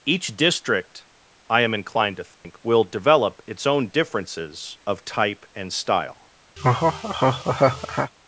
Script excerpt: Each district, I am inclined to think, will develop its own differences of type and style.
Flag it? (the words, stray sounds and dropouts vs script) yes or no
yes